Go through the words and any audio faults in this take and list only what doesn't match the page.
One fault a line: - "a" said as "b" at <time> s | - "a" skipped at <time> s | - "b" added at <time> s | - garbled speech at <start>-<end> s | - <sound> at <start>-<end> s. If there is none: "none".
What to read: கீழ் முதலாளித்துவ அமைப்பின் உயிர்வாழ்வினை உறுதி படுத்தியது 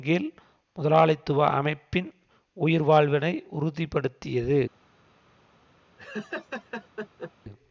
- laugh at 6.0-7.3 s